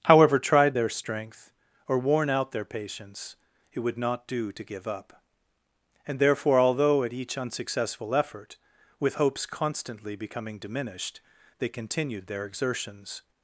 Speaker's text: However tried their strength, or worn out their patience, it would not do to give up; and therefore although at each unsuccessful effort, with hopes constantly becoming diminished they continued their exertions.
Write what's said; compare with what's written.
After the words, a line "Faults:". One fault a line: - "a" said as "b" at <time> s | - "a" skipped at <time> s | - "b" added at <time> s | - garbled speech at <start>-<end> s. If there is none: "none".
However tried their strength, or worn out their patience, it would not do to give up; and therefore although at each unsuccessful effort, with hopes constantly becoming diminished they continued their exertions.
Faults:
none